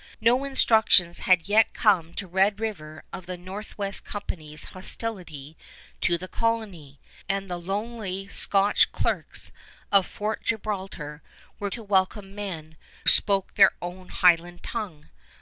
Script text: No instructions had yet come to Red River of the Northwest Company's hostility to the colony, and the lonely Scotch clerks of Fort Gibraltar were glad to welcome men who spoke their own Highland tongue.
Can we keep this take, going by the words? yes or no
no